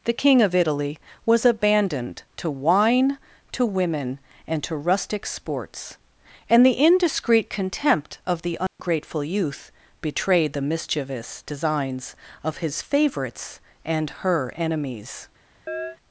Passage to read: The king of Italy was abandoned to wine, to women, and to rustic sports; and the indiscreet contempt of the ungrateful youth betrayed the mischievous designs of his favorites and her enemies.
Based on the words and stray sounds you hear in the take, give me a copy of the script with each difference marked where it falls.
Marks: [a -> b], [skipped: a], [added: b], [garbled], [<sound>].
The king of Italy was abandoned to wine, to women, and to rustic sports; and the indiscreet contempt of the ungrateful [dropout] youth betrayed the mischievous designs of his favorites and her enemies. [chirp]